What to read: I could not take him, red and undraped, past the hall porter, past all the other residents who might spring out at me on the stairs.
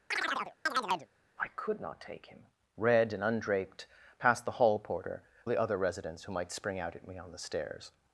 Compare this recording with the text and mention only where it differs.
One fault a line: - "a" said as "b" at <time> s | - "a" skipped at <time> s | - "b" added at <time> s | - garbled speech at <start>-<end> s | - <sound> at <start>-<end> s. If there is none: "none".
- chirp at 0.1-1.1 s
- "past all" skipped at 5.2 s